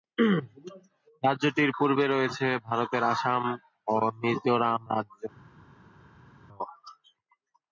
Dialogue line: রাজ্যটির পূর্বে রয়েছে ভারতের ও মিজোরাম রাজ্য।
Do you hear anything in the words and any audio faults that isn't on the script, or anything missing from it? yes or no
yes